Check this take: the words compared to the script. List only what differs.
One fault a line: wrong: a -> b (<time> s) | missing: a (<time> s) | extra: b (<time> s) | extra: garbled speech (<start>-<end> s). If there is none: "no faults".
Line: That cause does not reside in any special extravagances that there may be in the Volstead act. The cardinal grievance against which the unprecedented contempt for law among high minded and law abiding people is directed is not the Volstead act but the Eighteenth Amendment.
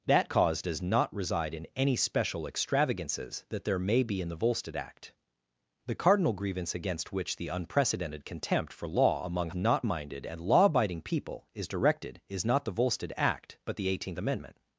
wrong: high -> not (9.5 s)